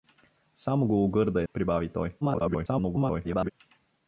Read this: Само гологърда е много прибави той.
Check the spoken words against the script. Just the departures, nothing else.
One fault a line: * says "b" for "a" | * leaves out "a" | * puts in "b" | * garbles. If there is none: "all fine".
* leaves out "много"
* garbles